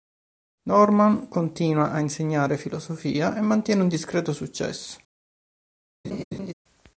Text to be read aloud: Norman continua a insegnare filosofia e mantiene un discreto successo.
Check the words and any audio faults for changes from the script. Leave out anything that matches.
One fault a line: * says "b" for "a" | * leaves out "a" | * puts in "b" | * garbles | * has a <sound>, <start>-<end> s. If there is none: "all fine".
* has a laugh, 6.0-6.5 s